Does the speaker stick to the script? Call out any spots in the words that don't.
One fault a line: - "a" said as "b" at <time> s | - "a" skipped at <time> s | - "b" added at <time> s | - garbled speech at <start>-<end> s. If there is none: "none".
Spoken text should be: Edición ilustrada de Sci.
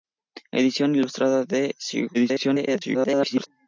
- garbled speech at 2.1-3.5 s